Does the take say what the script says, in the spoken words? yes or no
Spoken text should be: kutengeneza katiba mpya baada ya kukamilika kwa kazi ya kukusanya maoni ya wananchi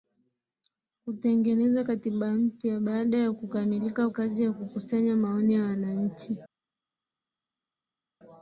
no